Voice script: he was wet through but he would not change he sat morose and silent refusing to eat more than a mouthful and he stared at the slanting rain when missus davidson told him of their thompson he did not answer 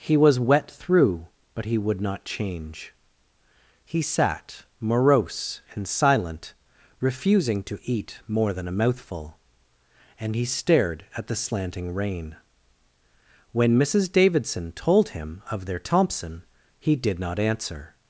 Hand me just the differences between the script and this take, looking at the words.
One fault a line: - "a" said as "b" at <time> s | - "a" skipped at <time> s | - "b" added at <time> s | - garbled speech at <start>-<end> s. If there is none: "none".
none